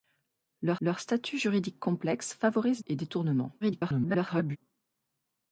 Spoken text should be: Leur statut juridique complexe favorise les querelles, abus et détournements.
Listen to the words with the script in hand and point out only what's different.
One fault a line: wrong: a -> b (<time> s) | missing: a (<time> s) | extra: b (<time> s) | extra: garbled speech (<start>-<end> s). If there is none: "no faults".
extra: leur (0.8 s)
missing: les querelles abus (2.8 s)
extra: garbled speech (3.6-4.6 s)